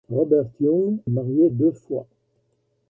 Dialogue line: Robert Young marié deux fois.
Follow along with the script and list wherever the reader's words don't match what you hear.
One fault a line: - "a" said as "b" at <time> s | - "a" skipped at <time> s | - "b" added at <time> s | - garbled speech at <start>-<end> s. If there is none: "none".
none